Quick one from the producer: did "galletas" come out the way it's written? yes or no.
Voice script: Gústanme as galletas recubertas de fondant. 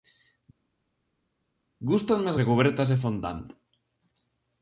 no